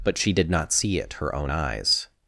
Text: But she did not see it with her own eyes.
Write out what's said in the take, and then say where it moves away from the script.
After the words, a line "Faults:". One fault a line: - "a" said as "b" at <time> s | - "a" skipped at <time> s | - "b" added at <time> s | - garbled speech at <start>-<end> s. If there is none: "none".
But she did not see it her own eyes.
Faults:
- "with" skipped at 1.1 s